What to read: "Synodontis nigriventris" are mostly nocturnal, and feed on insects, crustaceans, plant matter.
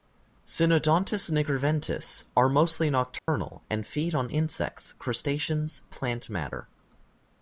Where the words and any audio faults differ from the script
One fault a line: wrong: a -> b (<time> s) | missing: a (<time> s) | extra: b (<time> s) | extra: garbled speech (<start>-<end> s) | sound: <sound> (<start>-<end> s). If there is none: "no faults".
sound: dropout (3.2-3.3 s)